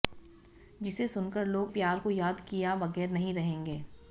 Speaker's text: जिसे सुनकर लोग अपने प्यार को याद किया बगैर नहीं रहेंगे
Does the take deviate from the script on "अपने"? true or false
true